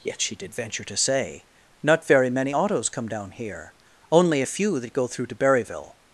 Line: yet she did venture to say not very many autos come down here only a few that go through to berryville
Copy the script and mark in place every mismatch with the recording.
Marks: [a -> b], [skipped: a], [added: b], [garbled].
yet she did venture to say not very many autos come down here only a few that go through to berryville